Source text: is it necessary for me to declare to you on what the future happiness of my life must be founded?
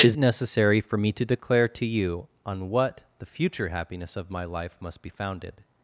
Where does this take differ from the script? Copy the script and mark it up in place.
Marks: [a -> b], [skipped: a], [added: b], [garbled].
is [skipped: it] necessary for me to declare to you on what the future happiness of my life must be founded?